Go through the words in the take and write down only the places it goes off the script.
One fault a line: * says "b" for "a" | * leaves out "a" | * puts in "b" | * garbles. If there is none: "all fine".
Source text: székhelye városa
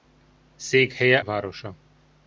all fine